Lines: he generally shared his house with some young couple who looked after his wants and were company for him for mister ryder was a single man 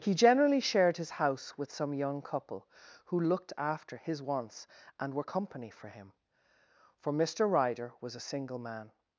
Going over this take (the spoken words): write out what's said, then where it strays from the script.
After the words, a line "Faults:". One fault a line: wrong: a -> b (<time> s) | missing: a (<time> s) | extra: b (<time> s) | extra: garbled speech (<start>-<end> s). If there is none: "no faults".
he generally shared his house with some young couple who looked after his wants and were company for him for mister ryder was a single man
Faults:
no faults